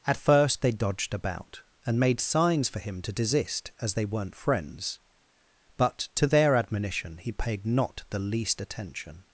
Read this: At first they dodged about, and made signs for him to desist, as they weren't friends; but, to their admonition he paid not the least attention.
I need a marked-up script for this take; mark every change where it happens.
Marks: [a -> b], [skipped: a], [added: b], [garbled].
At first they dodged about, and made signs for him to desist, as they weren't friends; but, to their admonition he paid not the least attention.